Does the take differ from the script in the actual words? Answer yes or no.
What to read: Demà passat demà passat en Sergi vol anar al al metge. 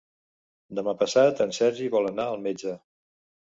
yes